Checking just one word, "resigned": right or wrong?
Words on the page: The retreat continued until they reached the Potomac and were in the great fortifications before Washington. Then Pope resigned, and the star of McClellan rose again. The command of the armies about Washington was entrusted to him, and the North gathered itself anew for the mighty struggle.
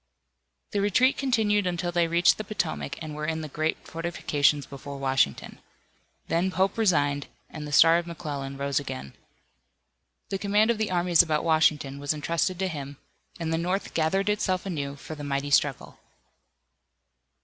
right